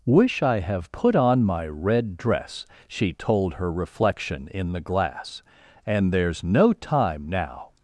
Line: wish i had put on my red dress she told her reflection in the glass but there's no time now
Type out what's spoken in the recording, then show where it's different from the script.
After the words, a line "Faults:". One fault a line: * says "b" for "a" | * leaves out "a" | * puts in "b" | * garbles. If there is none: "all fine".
wish i have put on my red dress she told her reflection in the glass and there's no time now
Faults:
* says "have" for "had"
* says "and" for "but"